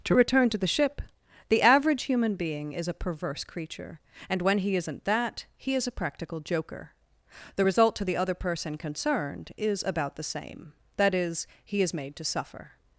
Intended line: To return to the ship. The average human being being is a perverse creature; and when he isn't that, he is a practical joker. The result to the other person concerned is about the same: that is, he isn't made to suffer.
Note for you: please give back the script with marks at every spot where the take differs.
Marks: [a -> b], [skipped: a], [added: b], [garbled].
To return to the ship. The average human being [skipped: being] is a perverse creature; and when he isn't that, he is a practical joker. The result to the other person concerned is about the same: that is, he [isn't -> is] made to suffer.